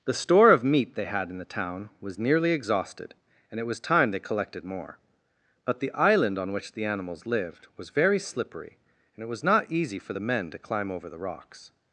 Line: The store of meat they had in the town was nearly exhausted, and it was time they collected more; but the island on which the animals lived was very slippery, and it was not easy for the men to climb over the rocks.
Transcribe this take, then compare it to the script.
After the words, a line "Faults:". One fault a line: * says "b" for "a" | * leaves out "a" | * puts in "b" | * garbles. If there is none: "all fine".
The store of meat they had in the town was nearly exhausted, and it was time they collected more; but the island on which the animals lived was very slippery, and it was not easy for the men to climb over the rocks.
Faults:
all fine